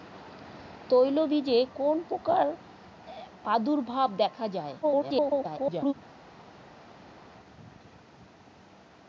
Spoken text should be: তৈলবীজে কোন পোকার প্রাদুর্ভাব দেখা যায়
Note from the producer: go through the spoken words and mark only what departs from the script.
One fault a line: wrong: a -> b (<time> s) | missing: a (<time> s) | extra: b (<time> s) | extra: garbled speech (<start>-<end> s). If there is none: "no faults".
extra: garbled speech (4.8-5.9 s)